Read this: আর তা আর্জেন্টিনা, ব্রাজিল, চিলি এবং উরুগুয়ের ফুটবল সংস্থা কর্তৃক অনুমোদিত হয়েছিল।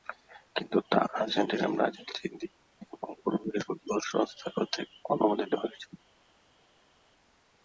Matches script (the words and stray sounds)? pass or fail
fail